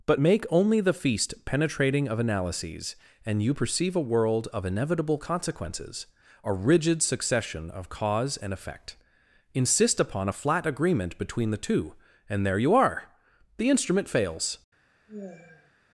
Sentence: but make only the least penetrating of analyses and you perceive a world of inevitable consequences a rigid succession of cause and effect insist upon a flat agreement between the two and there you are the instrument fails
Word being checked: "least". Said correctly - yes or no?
no